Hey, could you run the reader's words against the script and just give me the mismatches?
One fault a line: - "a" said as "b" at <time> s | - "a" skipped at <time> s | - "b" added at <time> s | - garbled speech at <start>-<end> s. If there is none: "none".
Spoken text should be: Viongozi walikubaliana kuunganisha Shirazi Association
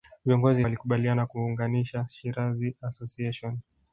none